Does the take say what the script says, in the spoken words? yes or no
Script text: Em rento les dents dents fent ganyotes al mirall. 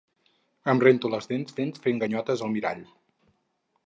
yes